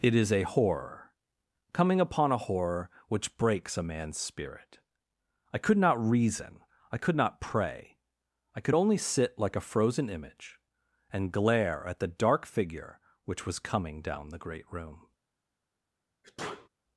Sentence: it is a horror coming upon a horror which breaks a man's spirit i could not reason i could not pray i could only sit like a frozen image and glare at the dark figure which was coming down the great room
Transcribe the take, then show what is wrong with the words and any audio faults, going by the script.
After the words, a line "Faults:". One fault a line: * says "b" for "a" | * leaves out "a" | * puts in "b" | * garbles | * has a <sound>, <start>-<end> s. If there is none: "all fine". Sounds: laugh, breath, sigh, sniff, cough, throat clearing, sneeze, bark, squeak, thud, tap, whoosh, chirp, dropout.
it is a horror coming upon a horror which breaks a man's spirit i could not reason i could not pray i could only sit like a frozen image and glare at the dark figure which was coming down the great room
Faults:
* has a sneeze, 16.2-16.7 s